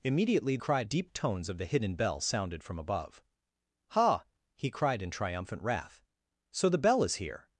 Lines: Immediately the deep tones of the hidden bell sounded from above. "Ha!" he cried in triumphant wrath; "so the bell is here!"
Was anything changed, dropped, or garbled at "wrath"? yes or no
no